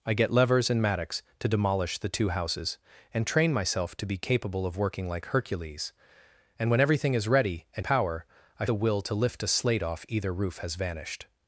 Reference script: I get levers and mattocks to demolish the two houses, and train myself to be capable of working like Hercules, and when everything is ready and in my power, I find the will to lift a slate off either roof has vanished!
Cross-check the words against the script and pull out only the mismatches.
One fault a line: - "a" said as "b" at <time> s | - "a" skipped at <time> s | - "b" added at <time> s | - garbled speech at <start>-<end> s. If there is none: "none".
- "in my" skipped at 7.8 s
- "find" skipped at 8.7 s